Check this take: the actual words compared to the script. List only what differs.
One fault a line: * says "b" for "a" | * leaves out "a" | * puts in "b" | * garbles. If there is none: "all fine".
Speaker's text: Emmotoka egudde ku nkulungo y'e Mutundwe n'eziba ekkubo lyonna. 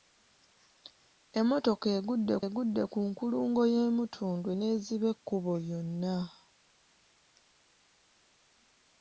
* puts in "egudde"